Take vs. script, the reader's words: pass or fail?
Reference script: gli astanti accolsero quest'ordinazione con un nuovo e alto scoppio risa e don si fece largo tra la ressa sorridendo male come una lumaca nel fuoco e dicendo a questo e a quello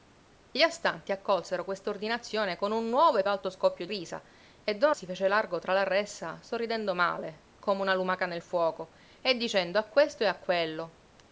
pass